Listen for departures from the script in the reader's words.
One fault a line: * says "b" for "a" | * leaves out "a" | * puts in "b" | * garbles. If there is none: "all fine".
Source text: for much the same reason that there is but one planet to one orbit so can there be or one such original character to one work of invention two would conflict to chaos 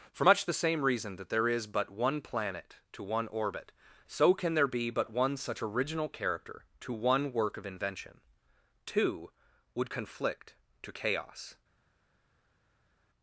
* says "but" for "or"